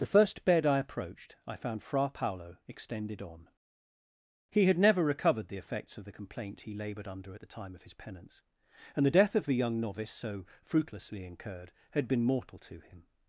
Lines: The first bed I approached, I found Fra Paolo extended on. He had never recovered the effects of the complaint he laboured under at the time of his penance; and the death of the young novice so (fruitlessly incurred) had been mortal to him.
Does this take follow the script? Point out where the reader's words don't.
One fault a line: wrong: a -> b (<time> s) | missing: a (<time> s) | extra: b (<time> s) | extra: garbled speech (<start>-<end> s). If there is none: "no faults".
no faults